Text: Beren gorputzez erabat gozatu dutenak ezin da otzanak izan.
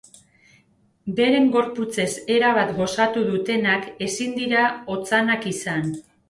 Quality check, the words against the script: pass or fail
fail